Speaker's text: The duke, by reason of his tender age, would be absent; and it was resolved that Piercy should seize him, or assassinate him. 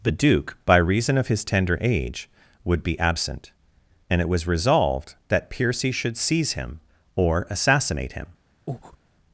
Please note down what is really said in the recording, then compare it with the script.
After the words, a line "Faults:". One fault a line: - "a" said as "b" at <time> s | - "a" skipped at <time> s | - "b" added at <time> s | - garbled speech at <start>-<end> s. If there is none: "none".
The duke, by reason of his tender age, would be absent; and it was resolved that Piercy should seize him, or assassinate him.
Faults:
none